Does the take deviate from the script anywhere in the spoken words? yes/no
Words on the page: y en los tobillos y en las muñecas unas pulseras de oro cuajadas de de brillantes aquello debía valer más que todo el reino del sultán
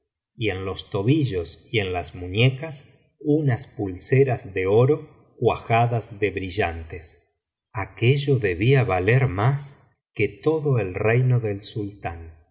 yes